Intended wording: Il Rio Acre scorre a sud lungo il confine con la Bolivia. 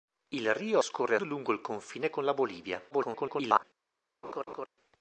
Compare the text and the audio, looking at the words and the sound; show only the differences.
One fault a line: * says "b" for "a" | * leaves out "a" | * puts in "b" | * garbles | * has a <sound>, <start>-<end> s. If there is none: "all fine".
* leaves out "Acre"
* leaves out "sud"
* garbles
* has a laugh, 4.2-4.7 s